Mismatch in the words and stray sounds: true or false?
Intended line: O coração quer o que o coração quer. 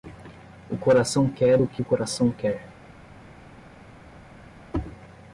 false